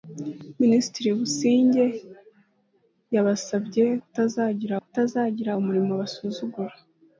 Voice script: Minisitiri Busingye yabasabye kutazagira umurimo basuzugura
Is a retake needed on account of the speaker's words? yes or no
yes